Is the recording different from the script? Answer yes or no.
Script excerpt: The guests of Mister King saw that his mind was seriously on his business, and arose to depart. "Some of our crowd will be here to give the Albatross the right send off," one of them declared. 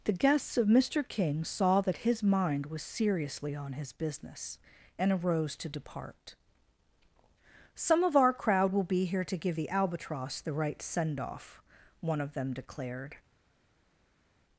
no